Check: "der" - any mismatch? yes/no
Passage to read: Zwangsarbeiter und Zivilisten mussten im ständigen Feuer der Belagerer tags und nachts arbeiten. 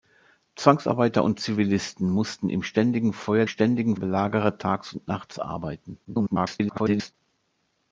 yes